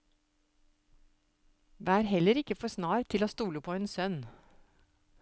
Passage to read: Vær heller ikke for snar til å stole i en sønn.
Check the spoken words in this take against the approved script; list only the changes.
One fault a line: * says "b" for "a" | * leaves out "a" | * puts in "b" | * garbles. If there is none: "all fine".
* says "på" for "i"